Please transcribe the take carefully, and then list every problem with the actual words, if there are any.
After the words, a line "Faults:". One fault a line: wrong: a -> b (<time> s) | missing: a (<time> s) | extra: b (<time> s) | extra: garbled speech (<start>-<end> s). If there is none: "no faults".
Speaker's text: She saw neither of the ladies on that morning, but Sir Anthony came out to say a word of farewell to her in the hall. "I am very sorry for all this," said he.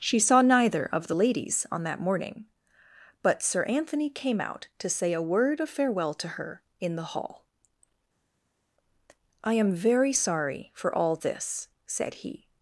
She saw neither of the ladies on that morning, but Sir Anthony came out to say a word of farewell to her in the hall. "I am very sorry for all this," said he.
Faults:
no faults